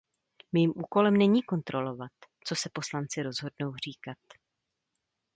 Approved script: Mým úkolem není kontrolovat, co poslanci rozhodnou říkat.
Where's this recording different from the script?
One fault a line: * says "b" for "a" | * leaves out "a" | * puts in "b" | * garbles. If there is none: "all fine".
* puts in "se"